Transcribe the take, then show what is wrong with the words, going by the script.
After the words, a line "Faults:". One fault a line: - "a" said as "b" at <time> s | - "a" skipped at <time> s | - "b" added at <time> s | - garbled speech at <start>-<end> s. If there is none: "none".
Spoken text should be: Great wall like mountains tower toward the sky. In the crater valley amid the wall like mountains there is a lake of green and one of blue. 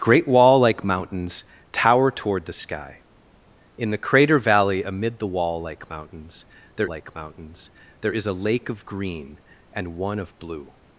Great wall like mountains tower toward the sky. In the crater valley amid the wall like mountains there like mountains there is a lake of green and one of blue.
Faults:
- "like mountains there" added at 6.9 s